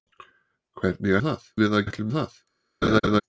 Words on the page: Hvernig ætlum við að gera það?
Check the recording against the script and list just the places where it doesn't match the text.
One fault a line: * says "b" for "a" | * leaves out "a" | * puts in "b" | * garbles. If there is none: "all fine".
* says "það" for "ætlum"
* says "ætlum" for "gera"